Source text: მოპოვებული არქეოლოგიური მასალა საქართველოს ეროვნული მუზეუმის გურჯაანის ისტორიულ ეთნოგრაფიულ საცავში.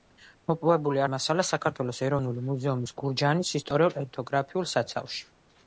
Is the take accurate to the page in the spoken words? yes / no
no